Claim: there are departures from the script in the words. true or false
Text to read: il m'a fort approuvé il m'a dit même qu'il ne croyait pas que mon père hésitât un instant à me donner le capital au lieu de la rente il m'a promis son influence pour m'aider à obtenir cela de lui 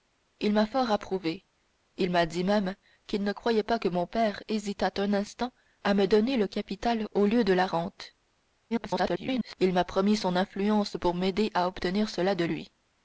true